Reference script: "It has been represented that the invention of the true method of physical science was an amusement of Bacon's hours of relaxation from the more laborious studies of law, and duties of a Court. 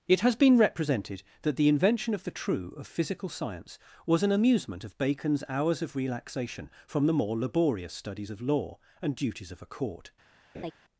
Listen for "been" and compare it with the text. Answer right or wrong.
right